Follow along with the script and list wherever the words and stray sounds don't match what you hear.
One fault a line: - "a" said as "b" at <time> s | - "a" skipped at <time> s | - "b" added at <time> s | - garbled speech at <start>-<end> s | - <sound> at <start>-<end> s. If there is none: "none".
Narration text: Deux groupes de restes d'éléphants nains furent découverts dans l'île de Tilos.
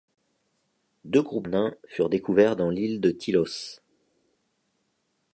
- "de restes d'éléphants" skipped at 1.5 s